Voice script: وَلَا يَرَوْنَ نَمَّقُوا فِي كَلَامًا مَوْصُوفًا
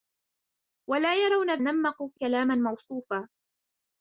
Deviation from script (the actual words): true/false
false